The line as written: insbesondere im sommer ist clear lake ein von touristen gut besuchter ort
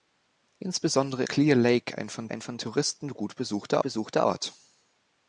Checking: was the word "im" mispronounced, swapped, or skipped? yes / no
yes